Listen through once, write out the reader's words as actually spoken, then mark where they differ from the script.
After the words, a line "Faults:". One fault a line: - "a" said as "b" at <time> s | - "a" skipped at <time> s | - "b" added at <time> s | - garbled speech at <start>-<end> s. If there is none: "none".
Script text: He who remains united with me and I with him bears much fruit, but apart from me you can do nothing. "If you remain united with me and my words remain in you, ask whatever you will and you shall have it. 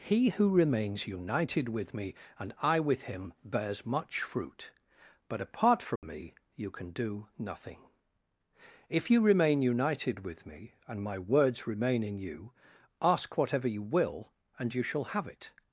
He who remains united with me and I with him bears much fruit, but apart from me you can do nothing. "If you remain united with me and my words remain in you, ask whatever you will and you shall have it.
Faults:
none